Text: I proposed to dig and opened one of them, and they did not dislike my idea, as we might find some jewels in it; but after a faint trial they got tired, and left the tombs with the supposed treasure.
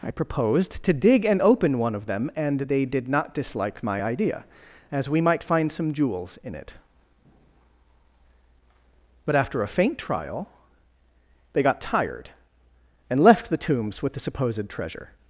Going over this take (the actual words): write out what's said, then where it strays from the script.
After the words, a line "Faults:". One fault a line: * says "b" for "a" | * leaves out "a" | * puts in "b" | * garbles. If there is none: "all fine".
I proposed to dig and open one of them, and they did not dislike my idea, as we might find some jewels in it; but after a faint trial they got tired, and left the tombs with the supposed treasure.
Faults:
* says "open" for "opened"